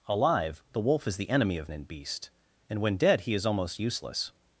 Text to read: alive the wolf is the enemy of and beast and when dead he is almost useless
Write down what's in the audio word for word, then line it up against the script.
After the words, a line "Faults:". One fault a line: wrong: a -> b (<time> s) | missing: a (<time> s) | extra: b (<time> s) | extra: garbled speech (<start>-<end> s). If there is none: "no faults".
alive the wolf is the enemy of and beast and when dead he is almost useless
Faults:
no faults